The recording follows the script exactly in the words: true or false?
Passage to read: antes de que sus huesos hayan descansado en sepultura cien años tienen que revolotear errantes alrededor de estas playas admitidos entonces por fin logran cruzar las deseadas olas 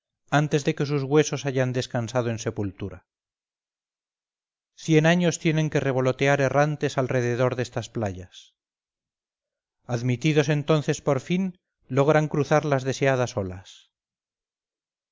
true